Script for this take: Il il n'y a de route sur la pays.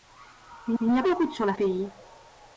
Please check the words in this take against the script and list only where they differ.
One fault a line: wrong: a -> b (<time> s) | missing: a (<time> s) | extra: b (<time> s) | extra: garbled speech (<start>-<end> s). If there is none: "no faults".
no faults